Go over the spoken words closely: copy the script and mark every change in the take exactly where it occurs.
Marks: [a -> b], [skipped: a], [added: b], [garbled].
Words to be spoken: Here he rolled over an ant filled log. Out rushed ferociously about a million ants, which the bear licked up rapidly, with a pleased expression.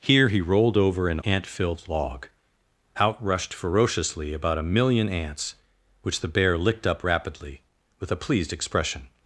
Here he rolled over an ant filled log. Out rushed ferociously about a million ants, which the bear licked up rapidly, with a pleased expression.